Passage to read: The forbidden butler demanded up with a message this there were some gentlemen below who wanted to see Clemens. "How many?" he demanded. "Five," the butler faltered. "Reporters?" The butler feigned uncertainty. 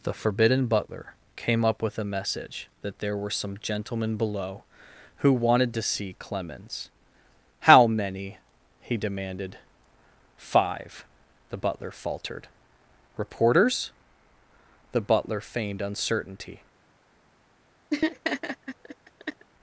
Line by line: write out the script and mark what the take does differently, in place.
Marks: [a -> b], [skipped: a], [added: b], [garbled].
The forbidden butler [demanded -> came] up with a message [this -> that] there were some gentlemen below who wanted to see Clemens. "How many?" he demanded. "Five," the butler faltered. "Reporters?" The butler feigned uncertainty.